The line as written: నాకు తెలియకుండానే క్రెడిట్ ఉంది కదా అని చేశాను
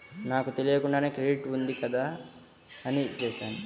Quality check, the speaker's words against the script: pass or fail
pass